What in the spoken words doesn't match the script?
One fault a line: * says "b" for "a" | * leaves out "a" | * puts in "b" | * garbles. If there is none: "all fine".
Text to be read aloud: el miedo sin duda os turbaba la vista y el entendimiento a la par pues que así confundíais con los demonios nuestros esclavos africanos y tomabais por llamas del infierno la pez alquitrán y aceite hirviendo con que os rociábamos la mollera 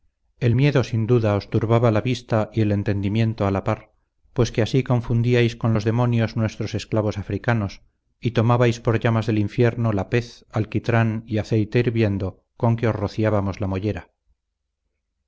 all fine